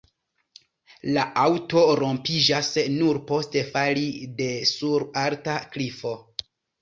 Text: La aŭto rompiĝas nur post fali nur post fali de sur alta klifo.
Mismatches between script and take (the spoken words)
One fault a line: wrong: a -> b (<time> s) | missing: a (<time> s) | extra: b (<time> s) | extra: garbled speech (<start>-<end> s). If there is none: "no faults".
missing: nur post fali (4.1 s)